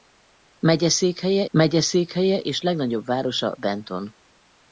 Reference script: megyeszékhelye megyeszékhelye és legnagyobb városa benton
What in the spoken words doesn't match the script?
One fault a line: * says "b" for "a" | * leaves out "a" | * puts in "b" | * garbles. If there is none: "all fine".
all fine